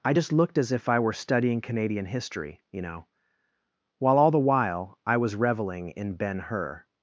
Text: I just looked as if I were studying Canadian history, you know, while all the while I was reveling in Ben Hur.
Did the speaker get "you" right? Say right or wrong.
right